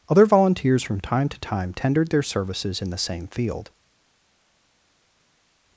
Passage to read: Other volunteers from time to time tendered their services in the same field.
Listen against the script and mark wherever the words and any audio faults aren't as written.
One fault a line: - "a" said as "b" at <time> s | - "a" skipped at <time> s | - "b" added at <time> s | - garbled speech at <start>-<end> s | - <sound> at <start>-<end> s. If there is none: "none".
none